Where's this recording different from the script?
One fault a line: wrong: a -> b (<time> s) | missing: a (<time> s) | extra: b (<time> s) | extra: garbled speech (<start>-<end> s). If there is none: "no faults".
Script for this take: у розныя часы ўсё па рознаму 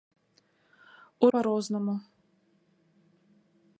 missing: розныя часы ўсё (1.3 s)